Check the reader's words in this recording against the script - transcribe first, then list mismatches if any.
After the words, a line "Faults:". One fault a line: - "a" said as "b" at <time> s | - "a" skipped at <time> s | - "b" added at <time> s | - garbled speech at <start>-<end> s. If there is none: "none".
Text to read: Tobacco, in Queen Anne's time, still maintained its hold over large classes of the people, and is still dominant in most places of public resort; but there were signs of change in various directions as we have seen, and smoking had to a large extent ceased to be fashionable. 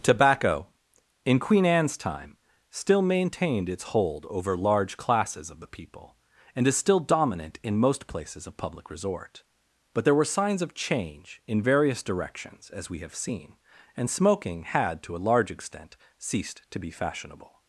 Tobacco, in Queen Anne's time, still maintained its hold over large classes of the people, and is still dominant in most places of public resort; but there were signs of change in various directions as we have seen, and smoking had to a large extent ceased to be fashionable.
Faults:
none